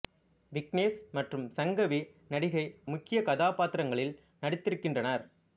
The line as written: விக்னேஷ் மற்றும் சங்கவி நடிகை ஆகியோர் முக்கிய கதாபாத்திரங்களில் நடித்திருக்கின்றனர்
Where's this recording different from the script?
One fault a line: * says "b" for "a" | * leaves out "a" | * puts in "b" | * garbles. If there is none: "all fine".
* leaves out "ஆகியோர்"